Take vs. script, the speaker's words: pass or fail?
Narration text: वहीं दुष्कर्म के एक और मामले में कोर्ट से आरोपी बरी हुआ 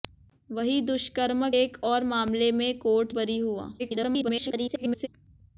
fail